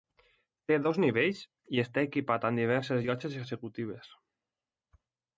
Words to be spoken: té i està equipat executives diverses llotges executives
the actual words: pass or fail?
fail